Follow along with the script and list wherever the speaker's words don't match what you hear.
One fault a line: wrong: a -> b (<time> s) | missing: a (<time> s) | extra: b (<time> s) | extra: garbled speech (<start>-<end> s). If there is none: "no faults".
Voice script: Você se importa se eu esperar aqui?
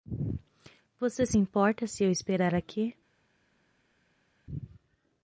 no faults